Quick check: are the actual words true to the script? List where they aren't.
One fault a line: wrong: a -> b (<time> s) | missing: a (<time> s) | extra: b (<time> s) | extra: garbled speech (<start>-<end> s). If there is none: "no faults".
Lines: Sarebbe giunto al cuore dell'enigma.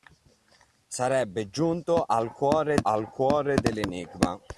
extra: al cuore (2.8 s)